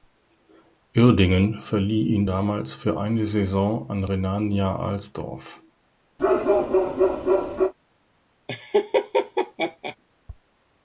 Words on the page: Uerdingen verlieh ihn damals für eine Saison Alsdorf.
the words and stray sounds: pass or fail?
fail